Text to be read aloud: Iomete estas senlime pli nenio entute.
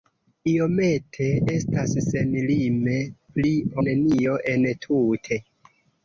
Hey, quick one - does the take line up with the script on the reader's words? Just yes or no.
yes